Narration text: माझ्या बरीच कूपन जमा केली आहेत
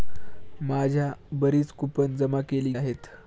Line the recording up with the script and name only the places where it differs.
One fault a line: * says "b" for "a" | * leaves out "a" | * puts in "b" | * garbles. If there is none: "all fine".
all fine